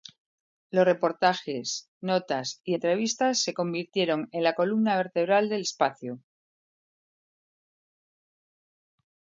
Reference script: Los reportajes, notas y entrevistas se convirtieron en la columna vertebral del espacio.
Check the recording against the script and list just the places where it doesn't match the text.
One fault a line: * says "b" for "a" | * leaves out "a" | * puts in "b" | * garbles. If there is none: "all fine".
all fine